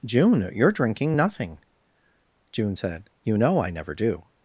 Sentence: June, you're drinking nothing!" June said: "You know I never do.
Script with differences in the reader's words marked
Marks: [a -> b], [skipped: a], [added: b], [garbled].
June, you're drinking nothing!" June said: "You know I never do.